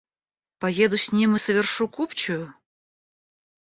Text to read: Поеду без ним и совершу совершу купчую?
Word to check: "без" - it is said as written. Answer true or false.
false